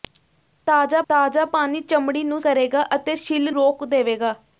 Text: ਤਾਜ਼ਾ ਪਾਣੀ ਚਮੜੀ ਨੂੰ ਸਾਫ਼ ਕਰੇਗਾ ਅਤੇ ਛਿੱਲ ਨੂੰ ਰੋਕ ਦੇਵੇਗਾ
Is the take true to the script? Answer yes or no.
no